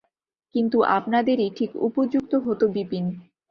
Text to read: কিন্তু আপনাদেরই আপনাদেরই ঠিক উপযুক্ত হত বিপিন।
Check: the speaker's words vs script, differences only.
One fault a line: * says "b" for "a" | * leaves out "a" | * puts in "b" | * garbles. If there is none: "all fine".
* leaves out "আপনাদেরই"